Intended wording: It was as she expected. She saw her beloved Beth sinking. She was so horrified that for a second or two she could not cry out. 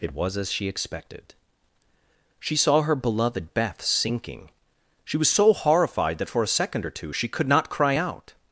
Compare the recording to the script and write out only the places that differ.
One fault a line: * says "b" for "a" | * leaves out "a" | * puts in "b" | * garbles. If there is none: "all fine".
all fine